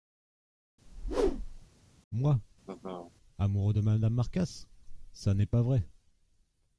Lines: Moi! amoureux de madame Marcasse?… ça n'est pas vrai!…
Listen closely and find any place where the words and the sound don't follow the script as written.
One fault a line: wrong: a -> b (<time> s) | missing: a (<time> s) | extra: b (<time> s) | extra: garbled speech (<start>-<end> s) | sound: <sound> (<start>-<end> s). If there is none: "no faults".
sound: whoosh (0.9-1.7 s)
sound: laugh (2.6-3.1 s)